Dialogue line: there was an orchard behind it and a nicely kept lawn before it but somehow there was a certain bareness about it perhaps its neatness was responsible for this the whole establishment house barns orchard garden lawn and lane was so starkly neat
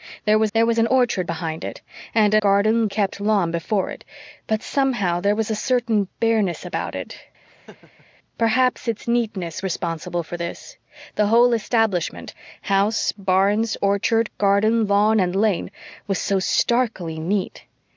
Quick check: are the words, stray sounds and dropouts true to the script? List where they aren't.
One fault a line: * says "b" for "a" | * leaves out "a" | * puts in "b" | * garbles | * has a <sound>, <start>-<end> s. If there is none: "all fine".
* puts in "there was"
* says "garden" for "nicely"
* has a laugh, 7.4-8.1 s
* leaves out "was"